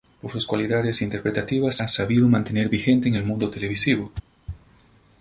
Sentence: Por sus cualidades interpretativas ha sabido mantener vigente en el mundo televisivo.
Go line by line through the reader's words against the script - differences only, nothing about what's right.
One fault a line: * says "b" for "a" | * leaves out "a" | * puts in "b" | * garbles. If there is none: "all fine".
all fine